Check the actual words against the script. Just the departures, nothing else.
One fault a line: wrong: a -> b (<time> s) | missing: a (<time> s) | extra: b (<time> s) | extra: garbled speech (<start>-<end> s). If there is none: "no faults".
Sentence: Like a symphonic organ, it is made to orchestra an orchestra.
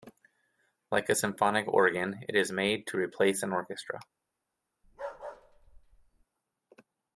wrong: orchestra -> replace (3.0 s)